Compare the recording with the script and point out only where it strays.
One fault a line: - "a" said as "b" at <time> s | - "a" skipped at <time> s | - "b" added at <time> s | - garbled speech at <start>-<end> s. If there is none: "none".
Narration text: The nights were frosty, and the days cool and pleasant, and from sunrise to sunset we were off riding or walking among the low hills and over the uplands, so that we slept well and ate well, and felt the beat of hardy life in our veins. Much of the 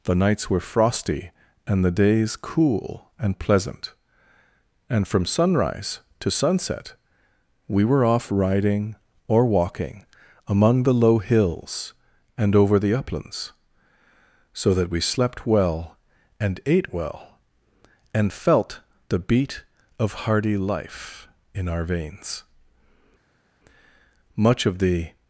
none